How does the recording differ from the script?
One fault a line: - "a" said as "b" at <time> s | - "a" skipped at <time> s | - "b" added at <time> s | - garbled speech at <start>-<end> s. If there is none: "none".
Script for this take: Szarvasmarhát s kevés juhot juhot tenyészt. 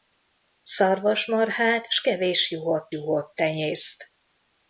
none